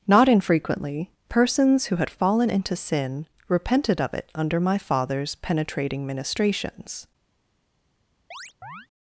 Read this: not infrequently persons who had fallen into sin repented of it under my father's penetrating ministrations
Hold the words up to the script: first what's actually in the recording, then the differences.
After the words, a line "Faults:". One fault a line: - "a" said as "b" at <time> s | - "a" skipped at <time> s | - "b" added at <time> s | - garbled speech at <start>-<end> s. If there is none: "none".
not infrequently persons who had fallen into sin repented of it under my father's penetrating ministrations
Faults:
none